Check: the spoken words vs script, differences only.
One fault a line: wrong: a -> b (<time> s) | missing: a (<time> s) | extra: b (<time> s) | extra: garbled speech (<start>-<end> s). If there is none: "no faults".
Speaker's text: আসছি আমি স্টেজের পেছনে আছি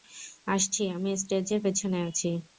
no faults